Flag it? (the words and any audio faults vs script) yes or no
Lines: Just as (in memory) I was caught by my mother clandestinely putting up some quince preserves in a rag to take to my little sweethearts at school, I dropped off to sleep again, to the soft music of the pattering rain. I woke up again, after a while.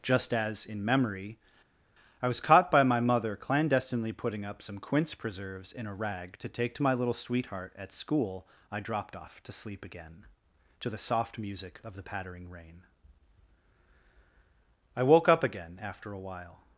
yes